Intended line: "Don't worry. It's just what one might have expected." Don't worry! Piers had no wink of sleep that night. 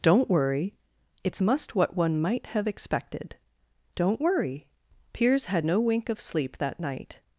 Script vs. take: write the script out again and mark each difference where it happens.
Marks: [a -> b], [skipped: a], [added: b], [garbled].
"Don't worry. It's [just -> must] what one might have expected." Don't worry! Piers had no wink of sleep that night.